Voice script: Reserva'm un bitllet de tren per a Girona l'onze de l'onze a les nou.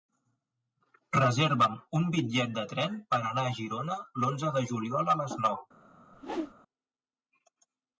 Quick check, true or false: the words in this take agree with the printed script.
false